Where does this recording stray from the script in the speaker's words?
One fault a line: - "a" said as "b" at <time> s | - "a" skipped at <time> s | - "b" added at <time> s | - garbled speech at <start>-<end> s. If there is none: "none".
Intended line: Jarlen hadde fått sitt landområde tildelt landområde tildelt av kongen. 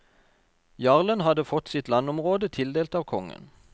- "landområde tildelt" skipped at 3.0 s